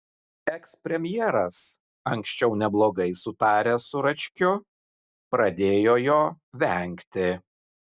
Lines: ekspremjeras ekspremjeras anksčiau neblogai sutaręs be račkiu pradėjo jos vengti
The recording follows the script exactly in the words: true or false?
false